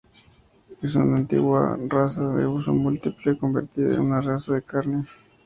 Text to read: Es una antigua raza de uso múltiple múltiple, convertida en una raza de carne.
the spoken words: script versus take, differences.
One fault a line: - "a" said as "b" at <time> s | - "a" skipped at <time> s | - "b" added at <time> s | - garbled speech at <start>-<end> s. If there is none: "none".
- "múltiple" skipped at 3.4 s